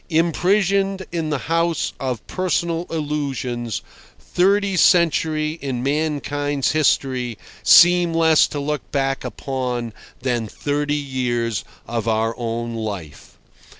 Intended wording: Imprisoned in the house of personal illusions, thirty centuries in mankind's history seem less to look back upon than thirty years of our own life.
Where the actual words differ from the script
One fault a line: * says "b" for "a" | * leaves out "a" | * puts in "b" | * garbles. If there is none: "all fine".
all fine